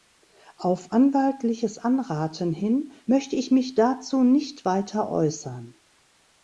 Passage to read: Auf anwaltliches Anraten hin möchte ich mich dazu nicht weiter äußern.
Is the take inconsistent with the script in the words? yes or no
no